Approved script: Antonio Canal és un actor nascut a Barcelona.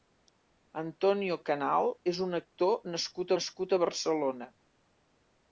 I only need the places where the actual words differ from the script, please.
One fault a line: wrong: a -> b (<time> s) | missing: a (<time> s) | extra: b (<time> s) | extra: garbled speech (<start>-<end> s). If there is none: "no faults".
extra: nascut (3.4 s)